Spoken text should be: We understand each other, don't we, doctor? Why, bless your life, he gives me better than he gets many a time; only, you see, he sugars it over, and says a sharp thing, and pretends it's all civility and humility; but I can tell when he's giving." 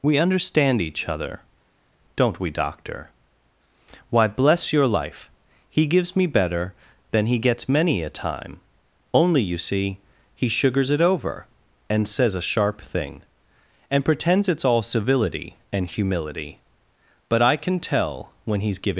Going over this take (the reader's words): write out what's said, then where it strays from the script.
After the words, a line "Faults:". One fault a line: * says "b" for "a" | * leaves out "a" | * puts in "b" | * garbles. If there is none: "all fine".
We understand each other, don't we, doctor? Why, bless your life, he gives me better than he gets many a time; only, you see, he sugars it over, and says a sharp thing, and pretends it's all civility and humility; but I can tell when he's giving."
Faults:
all fine